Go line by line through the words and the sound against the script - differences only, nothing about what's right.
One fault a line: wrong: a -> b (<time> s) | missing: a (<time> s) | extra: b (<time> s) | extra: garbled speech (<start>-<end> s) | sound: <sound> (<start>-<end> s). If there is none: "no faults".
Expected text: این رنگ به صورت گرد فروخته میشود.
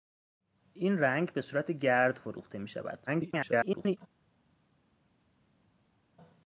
extra: garbled speech (3.1-4.0 s)